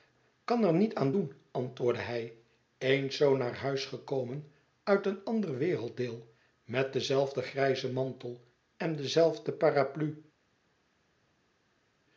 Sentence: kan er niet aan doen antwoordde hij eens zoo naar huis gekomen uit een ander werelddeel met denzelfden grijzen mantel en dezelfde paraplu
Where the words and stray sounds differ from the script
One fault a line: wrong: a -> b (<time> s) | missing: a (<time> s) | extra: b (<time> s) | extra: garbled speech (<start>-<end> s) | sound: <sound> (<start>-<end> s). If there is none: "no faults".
no faults